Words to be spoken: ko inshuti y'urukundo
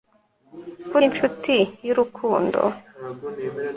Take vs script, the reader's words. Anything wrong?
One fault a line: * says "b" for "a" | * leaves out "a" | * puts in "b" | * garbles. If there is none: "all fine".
all fine